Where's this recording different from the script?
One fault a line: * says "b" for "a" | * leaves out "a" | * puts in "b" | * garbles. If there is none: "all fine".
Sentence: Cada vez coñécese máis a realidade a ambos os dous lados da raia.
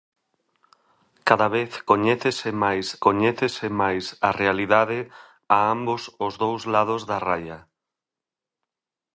* puts in "coñécese máis"